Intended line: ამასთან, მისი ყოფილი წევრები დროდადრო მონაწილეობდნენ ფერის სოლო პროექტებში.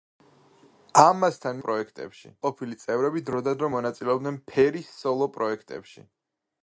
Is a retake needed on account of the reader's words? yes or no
yes